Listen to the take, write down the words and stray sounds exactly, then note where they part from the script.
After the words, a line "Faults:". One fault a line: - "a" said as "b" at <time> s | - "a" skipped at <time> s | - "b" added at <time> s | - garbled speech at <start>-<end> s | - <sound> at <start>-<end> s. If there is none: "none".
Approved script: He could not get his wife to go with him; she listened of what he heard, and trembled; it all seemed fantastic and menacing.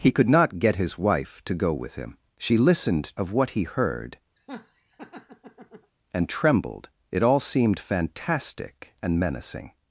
He could not get his wife to go with him; she listened of what he heard, and trembled; it all seemed fantastic and menacing.
Faults:
- laugh at 4.4-5.9 s